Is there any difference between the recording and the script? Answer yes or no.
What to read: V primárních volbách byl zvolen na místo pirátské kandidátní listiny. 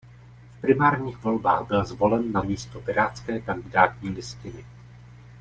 no